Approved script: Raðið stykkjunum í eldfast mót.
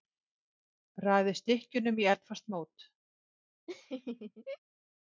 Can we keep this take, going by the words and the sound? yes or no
no